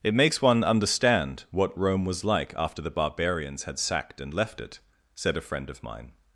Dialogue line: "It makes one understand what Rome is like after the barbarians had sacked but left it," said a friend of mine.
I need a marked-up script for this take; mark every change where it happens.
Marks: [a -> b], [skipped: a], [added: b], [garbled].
"It makes one understand what Rome [is -> was] like after the barbarians had sacked [but -> and] left it," said a friend of mine.